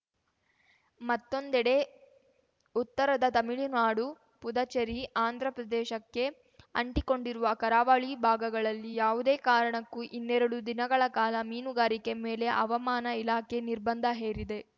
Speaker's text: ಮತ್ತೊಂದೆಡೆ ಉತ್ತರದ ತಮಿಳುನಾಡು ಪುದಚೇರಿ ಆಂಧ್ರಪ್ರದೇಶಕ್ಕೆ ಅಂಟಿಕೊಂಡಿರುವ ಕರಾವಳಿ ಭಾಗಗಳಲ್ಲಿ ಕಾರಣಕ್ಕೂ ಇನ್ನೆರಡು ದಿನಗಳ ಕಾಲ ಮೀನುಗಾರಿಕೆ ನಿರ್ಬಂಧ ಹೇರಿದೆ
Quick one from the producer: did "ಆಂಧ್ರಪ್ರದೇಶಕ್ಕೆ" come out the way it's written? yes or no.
yes